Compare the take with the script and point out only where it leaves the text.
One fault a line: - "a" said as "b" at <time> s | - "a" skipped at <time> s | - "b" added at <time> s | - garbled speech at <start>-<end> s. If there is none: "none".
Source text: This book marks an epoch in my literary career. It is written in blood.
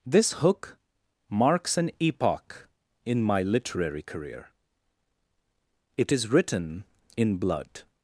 - "book" said as "hook" at 0.3 s